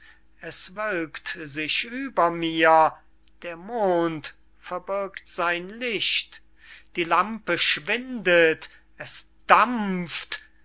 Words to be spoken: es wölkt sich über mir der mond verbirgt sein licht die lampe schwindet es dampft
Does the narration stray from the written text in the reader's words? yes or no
no